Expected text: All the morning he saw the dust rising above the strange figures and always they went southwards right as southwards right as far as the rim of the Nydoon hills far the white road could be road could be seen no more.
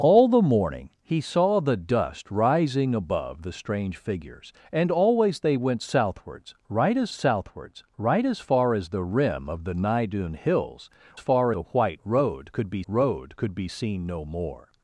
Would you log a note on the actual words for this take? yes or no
no